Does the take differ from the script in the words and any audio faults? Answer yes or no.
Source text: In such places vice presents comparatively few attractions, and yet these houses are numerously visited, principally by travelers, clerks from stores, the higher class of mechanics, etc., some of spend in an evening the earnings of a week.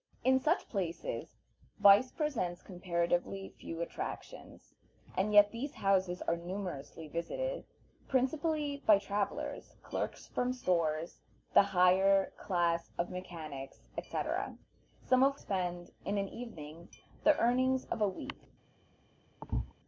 yes